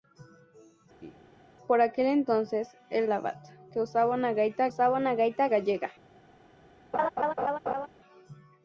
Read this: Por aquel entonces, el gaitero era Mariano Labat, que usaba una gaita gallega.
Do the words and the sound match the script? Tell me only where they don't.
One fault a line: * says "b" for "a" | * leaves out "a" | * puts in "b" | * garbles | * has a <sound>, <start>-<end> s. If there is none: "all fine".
* has a laugh, 1.0-1.4 s
* says "Labat que usaba una gaita" for "gaitero era Mariano Labat que"
* has a laugh, 6.9-7.9 s